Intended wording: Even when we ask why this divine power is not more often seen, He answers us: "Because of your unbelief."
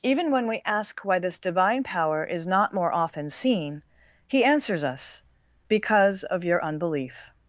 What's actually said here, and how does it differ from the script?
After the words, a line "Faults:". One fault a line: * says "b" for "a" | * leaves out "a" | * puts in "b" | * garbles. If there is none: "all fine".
Even when we ask why this divine power is not more often seen, He answers us: "Because of your unbelief."
Faults:
all fine